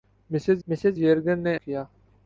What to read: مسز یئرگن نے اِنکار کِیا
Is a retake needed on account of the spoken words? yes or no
yes